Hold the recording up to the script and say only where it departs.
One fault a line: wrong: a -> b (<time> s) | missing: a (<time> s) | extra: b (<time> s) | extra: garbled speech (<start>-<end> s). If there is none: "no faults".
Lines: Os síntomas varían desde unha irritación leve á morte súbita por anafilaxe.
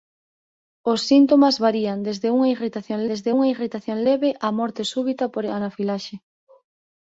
extra: desde unha irritación (3.1 s)